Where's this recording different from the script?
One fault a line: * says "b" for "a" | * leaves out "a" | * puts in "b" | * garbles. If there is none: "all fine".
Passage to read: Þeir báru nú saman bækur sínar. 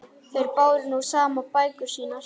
all fine